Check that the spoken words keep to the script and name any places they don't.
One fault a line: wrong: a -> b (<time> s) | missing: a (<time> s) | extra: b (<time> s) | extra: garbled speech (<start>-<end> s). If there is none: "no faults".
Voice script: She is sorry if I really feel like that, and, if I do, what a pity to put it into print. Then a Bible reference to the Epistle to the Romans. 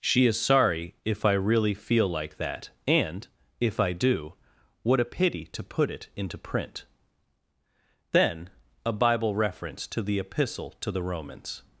no faults